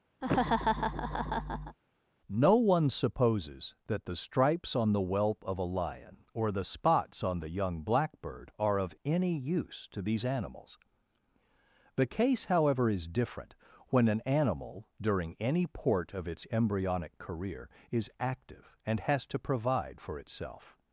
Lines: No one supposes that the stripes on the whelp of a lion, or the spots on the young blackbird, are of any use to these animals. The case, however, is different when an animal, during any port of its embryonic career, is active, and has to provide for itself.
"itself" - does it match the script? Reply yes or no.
yes